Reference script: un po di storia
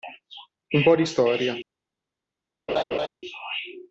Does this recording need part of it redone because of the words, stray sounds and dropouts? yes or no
yes